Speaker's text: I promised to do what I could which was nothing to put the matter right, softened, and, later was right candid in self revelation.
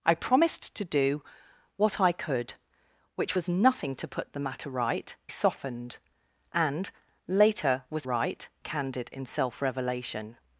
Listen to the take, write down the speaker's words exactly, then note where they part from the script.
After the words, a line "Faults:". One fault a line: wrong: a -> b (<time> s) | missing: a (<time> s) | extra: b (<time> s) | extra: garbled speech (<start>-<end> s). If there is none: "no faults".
I promised to do what I could which was nothing to put the matter right, softened, and, later was right candid in self revelation.
Faults:
no faults